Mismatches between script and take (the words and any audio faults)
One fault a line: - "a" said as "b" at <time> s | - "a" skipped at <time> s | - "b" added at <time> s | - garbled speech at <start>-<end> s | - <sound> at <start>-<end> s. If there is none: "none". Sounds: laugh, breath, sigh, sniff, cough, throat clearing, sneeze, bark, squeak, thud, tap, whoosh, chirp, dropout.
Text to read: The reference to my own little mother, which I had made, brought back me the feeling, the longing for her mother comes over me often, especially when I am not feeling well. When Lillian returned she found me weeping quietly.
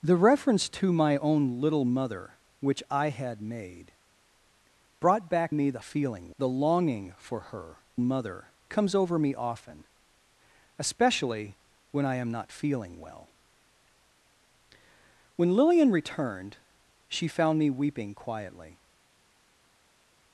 none